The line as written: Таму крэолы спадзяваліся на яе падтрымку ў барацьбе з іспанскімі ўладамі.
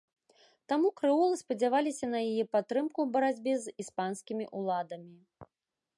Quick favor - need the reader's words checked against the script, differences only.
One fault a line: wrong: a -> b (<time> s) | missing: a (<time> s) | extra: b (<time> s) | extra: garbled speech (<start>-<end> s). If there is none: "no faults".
no faults